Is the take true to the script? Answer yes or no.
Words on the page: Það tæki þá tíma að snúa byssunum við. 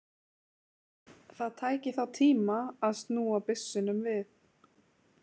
yes